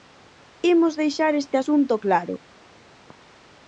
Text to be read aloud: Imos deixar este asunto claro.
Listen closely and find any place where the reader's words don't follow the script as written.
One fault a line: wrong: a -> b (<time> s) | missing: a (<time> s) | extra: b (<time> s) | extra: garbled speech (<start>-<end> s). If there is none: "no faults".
no faults